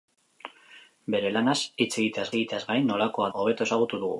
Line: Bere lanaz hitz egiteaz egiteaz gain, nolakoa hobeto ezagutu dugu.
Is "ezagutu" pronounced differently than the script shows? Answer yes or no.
no